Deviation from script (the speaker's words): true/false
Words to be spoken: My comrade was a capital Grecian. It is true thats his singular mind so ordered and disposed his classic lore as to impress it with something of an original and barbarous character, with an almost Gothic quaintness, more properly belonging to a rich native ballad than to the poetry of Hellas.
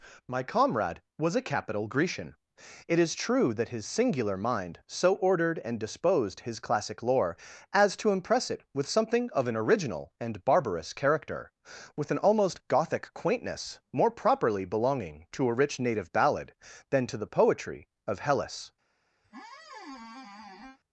true